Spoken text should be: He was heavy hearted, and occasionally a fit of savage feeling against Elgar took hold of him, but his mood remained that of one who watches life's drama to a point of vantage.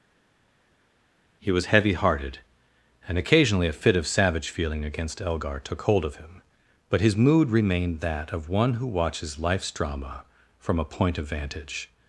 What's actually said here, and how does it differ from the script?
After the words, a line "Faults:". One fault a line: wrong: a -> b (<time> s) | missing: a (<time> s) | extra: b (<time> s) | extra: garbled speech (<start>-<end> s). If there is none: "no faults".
He was heavy hearted, and occasionally a fit of savage feeling against Elgar took hold of him, but his mood remained that of one who watches life's drama from a point of vantage.
Faults:
wrong: to -> from (10.6 s)